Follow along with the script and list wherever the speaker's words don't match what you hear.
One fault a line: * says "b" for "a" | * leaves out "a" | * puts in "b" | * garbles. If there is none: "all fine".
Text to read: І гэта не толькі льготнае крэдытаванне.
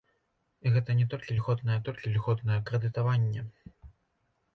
* puts in "толькі льготнае"